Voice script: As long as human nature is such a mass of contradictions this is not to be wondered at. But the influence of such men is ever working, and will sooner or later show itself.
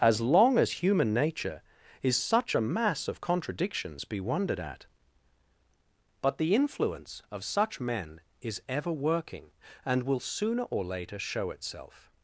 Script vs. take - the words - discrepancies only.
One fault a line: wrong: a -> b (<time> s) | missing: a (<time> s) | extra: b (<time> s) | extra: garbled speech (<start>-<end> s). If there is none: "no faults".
missing: this is not to (4.1 s)